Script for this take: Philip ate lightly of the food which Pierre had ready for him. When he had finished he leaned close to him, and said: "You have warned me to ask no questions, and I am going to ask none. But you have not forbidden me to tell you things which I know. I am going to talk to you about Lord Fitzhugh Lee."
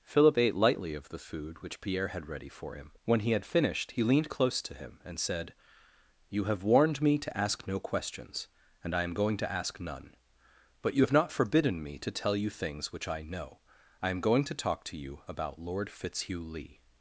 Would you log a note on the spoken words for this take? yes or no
no